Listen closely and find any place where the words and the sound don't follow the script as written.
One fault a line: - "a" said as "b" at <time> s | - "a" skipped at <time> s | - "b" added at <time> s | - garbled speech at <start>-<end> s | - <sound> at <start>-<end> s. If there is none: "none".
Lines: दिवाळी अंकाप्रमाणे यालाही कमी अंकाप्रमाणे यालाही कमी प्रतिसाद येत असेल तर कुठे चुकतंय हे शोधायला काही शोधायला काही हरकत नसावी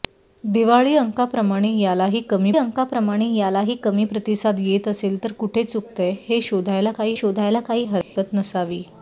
- dropout at 8.0-8.2 s